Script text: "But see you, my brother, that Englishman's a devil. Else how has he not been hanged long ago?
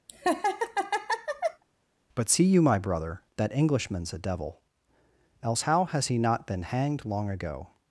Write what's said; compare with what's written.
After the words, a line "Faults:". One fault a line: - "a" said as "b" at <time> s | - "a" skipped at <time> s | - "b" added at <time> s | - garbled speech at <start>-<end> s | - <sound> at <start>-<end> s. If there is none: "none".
"But see you, my brother, that Englishman's a devil. Else how has he not been hanged long ago?
Faults:
- laugh at 0.1-1.6 s